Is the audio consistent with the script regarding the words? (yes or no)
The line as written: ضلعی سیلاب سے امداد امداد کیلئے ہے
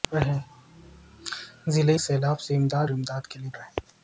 yes